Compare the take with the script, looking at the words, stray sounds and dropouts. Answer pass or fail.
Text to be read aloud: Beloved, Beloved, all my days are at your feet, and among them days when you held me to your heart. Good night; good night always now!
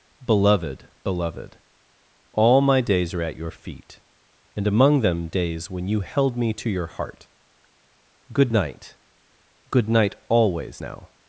pass